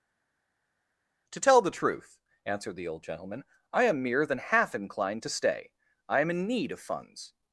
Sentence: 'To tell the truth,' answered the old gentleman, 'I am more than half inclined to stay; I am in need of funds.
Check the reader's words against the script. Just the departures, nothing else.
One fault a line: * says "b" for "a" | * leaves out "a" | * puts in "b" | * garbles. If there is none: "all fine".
* says "mere" for "more"